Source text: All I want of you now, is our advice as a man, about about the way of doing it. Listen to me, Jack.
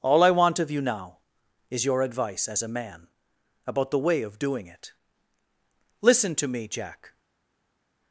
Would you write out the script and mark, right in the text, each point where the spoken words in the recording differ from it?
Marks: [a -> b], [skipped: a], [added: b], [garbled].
All I want of you now, is [our -> your] advice as a man, about [skipped: about] the way of doing it. Listen to me, Jack.